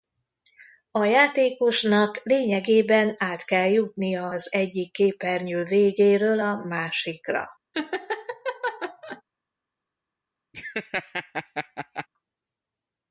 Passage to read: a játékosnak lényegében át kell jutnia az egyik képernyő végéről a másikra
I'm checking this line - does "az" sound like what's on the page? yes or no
yes